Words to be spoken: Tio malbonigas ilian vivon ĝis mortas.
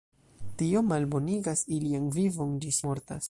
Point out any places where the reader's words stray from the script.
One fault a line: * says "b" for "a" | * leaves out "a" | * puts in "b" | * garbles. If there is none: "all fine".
all fine